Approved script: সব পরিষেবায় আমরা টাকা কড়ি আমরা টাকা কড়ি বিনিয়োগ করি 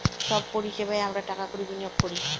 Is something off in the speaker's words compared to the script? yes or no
yes